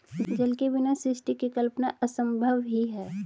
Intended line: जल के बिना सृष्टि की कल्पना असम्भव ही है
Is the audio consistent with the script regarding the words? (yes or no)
yes